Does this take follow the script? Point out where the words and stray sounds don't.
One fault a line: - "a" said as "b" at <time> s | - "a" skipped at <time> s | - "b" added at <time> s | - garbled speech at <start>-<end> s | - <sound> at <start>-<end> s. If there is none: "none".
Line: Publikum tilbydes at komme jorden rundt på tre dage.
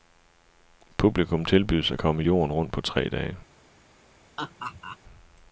- laugh at 4.4-5.0 s